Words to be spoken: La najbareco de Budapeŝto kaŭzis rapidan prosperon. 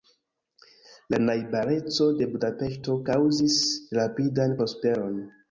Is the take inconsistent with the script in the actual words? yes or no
no